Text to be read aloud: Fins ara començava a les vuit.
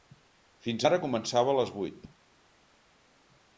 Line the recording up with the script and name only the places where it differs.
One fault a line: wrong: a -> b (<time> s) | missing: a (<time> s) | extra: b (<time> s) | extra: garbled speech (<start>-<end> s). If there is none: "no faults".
no faults